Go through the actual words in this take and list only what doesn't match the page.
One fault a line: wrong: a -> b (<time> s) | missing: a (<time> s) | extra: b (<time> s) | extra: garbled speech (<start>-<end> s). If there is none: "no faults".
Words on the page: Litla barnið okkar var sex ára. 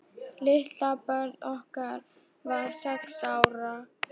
no faults